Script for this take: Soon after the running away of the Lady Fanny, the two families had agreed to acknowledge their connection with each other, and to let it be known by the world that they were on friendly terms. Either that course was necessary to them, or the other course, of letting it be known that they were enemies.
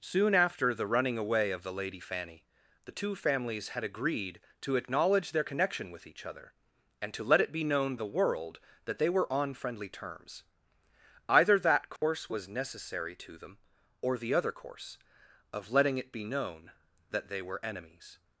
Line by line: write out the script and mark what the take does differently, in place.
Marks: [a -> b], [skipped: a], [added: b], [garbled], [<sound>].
Soon after the running away of the Lady Fanny, the two families had agreed to acknowledge their connection with each other, and to let it be known [skipped: by] the world that they were on friendly terms. Either that course [dropout] was necessary to them, or the other course, of letting it be known that they were enemies.